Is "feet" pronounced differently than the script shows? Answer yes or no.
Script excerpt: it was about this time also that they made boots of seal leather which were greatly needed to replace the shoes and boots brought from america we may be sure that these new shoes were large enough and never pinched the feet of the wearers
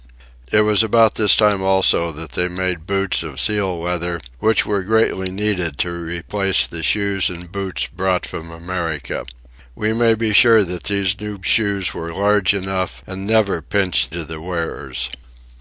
yes